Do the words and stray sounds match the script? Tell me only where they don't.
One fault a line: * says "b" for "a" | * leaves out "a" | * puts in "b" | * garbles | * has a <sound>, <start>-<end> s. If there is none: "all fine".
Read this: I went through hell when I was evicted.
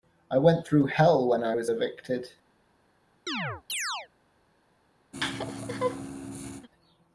* has a chirp, 3.3-4.1 s
* has a laugh, 5.1-6.7 s